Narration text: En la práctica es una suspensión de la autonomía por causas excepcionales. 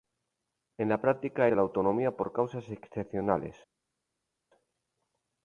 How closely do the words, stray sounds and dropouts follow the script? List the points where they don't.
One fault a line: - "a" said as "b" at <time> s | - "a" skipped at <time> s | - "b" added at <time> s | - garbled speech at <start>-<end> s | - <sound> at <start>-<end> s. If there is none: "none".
- "es una suspensión" skipped at 1.5 s